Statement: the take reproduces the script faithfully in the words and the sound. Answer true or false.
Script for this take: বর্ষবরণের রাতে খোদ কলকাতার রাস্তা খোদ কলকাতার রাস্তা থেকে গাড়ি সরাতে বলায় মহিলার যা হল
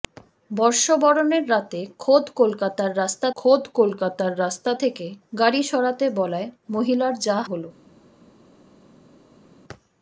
true